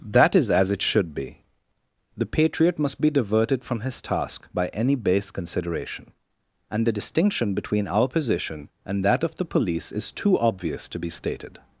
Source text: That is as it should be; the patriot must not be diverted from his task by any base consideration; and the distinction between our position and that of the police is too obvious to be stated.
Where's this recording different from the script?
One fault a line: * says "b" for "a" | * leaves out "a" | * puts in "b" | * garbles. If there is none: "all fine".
* leaves out "not"